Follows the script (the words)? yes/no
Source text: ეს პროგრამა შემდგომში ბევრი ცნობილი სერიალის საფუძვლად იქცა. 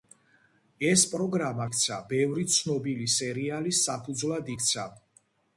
no